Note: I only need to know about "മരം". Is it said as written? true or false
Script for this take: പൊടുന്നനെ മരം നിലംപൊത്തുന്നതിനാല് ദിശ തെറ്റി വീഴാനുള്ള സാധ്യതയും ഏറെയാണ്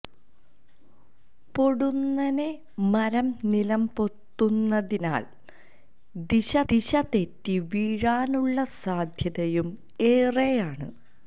true